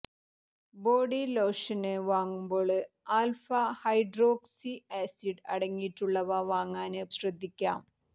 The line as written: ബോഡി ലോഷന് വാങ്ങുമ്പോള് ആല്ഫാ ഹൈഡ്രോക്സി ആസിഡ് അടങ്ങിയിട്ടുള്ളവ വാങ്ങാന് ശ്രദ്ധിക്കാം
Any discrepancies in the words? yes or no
no